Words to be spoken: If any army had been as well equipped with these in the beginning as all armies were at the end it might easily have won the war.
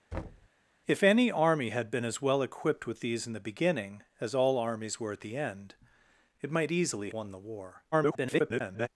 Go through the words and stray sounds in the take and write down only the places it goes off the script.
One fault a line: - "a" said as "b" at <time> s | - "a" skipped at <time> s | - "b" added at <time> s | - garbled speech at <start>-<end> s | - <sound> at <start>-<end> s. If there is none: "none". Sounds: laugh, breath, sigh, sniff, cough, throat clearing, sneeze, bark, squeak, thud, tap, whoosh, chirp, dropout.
- thud at 0.1-0.5 s
- "have" skipped at 7.1 s
- garbled speech at 7.9-8.9 s